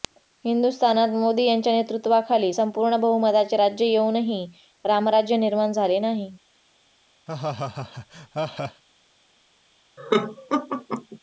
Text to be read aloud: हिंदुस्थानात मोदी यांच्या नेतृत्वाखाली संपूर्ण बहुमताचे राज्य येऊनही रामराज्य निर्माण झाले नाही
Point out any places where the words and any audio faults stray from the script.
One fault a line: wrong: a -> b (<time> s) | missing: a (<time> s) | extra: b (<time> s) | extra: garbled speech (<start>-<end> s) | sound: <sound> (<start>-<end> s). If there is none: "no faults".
sound: laugh (7.3-8.8 s)
sound: laugh (10.0-11.2 s)